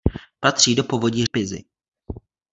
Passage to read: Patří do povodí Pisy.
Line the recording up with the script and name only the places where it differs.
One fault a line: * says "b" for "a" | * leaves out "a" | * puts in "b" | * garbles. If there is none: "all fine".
all fine